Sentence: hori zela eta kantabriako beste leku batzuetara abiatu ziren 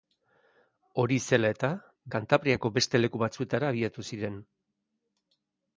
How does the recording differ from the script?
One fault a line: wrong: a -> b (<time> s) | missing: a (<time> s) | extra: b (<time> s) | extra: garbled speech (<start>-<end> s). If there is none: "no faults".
no faults